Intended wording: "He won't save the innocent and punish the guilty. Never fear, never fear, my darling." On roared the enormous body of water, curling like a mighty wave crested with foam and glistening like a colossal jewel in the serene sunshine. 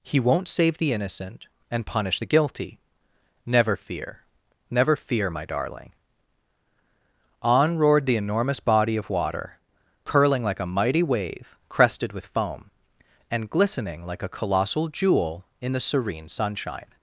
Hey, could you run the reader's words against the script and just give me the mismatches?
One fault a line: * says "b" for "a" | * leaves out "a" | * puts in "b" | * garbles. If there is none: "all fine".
all fine